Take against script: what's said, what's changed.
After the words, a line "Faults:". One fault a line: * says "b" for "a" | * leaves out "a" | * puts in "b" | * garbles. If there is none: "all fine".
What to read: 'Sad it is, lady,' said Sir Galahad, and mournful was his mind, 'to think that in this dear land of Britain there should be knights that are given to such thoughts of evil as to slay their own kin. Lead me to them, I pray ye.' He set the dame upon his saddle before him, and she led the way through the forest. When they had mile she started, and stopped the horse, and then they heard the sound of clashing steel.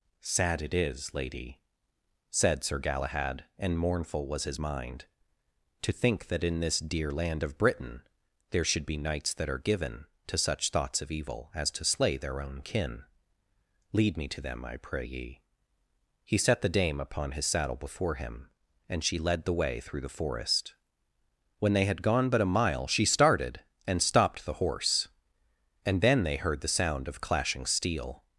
'Sad it is, lady,' said Sir Galahad, and mournful was his mind, 'to think that in this dear land of Britain there should be knights that are given to such thoughts of evil as to slay their own kin. Lead me to them, I pray ye.' He set the dame upon his saddle before him, and she led the way through the forest. When they had gone but a mile she started, and stopped the horse, and then they heard the sound of clashing steel.
Faults:
* puts in "gone but a"